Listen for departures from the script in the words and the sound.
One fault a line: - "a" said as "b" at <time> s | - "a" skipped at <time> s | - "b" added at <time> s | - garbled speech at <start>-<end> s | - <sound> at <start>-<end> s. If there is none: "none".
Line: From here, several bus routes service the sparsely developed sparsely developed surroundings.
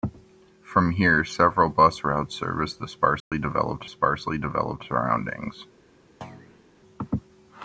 - dropout at 3.2-3.3 s
- thud at 6.2-6.7 s